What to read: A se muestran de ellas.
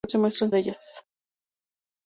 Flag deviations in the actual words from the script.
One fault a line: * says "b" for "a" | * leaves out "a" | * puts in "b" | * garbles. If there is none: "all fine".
all fine